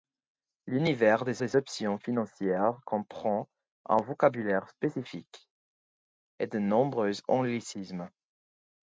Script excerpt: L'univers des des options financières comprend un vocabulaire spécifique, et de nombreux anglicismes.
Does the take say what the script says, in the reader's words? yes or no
yes